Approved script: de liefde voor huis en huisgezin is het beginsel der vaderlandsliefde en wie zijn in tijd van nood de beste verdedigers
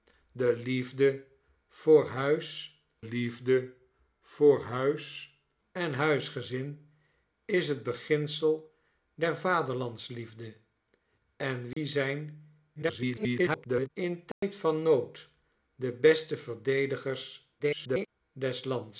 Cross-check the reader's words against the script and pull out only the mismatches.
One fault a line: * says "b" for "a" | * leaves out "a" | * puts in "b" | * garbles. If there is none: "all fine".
* puts in "liefde voor huis"
* garbles
* garbles